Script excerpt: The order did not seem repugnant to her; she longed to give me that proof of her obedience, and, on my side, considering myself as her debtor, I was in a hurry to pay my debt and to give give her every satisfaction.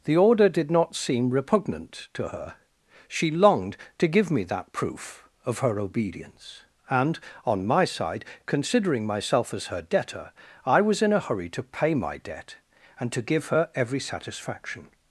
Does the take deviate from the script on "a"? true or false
false